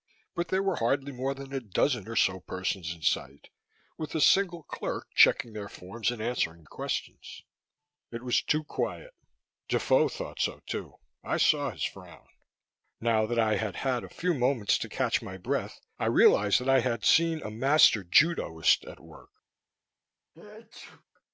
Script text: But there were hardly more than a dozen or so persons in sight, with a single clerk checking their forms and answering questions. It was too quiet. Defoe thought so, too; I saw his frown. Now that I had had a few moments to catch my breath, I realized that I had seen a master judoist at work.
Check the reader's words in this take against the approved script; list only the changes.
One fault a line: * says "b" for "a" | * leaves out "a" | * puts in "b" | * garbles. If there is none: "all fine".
all fine